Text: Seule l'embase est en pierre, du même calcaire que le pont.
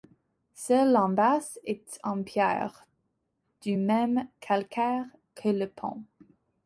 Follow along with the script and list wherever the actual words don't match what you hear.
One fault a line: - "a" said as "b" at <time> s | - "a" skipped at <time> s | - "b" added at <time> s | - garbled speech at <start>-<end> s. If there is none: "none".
none